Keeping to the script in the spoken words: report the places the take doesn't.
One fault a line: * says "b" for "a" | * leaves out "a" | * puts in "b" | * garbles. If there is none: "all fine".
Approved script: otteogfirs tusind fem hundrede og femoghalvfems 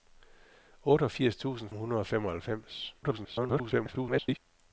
* leaves out "fem"
* garbles